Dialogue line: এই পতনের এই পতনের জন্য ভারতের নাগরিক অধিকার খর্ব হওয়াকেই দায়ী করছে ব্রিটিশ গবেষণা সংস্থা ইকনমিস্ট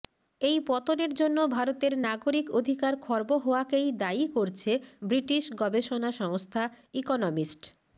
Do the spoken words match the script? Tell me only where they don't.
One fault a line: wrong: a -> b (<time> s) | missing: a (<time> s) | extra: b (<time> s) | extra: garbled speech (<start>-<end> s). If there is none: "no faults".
missing: এই পতনের (1.1 s)